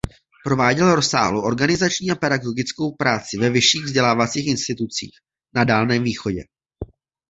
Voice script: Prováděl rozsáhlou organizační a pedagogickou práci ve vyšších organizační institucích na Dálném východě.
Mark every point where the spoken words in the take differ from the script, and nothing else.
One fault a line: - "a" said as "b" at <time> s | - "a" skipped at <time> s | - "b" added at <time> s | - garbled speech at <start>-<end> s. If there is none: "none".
- "organizační" said as "vzdělávacích" at 3.8 s